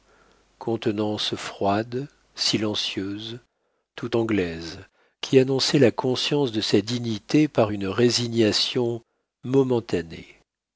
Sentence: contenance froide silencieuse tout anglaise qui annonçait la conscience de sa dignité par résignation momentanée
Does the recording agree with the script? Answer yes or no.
no